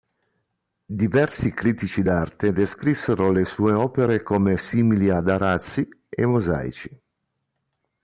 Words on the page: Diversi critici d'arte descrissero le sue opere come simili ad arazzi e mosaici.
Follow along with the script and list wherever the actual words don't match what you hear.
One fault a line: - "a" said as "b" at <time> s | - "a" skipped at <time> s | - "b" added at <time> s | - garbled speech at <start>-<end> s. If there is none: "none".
none